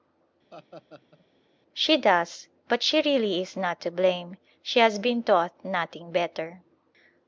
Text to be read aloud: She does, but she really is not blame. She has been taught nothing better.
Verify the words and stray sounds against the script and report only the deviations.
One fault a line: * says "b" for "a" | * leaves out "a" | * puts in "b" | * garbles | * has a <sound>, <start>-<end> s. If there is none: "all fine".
* has a laugh, 0.5-1.3 s
* puts in "to"